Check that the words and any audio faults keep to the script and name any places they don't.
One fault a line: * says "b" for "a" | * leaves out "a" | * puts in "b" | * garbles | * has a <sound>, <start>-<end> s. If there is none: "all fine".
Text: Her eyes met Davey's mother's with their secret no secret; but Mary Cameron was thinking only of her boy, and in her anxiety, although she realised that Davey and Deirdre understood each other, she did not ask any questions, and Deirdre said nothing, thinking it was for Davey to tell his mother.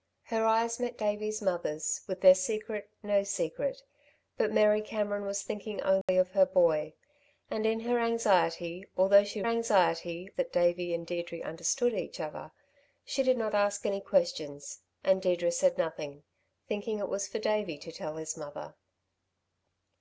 * has a dropout, 6.0-6.1 s
* says "anxiety" for "realised"